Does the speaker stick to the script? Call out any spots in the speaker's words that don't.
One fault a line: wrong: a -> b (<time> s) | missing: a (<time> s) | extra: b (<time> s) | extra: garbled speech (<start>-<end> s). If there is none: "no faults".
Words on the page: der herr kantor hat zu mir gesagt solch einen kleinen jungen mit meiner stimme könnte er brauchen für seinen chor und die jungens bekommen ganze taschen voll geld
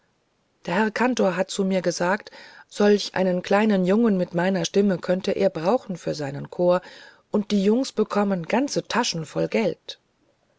no faults